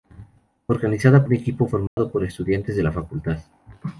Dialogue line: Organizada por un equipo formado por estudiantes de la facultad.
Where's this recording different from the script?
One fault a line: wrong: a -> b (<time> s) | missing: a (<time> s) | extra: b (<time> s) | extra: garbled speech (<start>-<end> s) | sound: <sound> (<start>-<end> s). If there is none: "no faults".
missing: por (1.3 s)
sound: dropout (1.9-2.0 s)